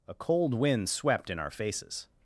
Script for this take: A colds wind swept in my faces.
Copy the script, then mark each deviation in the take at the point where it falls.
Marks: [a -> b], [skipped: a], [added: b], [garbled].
A [colds -> cold] wind swept in [my -> our] faces.